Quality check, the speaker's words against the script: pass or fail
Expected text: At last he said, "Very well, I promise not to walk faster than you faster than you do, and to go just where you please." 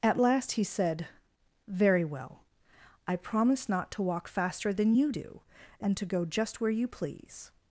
fail